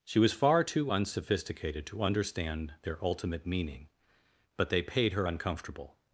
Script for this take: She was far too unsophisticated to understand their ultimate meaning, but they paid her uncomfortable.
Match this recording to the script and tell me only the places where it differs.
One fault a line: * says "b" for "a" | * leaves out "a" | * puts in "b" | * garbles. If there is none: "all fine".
all fine